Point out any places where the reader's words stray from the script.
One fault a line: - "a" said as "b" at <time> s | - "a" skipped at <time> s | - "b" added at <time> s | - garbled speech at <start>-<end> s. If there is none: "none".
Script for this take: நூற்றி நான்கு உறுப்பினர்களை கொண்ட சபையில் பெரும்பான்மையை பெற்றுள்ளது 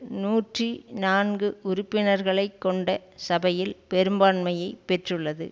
none